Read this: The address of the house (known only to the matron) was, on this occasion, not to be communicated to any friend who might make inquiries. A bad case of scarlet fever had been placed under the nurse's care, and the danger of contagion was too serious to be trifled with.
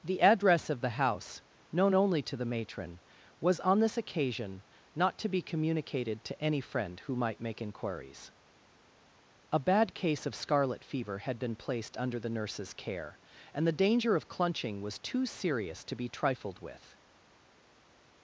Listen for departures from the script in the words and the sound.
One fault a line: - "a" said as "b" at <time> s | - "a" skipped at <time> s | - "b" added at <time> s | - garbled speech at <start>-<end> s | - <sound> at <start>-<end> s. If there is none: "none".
- "contagion" said as "clunching" at 14.3 s